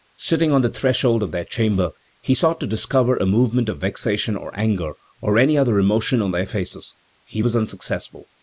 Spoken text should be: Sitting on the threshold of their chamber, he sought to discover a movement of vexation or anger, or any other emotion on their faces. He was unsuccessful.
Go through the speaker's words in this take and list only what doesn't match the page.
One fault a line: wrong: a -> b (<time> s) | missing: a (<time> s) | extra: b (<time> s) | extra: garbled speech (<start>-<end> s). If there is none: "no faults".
no faults